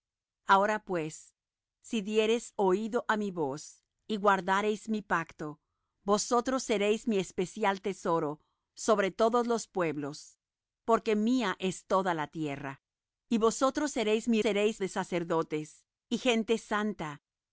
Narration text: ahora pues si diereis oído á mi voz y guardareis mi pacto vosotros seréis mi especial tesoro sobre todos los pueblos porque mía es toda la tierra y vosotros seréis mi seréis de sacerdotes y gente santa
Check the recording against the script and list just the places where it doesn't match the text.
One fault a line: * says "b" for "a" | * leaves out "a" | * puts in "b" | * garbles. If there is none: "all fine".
all fine